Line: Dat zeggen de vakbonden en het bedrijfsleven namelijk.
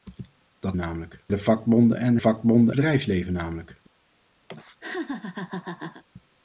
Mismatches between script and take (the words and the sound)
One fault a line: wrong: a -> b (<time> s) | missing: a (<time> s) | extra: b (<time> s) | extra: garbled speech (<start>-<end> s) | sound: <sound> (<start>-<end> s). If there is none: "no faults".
wrong: zeggen -> namelijk (0.8 s)
wrong: het -> vakbonden (2.2 s)
sound: laugh (4.5-6.0 s)